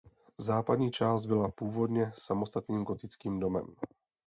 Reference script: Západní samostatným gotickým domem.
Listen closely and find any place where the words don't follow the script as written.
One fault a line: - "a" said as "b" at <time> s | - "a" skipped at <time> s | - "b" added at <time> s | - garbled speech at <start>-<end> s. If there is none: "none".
- "část byla původně" added at 0.9 s